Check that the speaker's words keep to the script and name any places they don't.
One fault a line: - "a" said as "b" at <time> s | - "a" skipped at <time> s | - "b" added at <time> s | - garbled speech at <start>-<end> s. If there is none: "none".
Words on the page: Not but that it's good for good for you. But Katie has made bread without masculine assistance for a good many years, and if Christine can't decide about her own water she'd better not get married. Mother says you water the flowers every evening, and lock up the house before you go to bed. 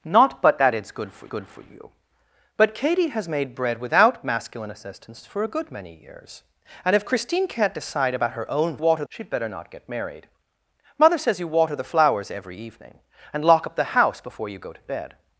none